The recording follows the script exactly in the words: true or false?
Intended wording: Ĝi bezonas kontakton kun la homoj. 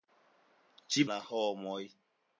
false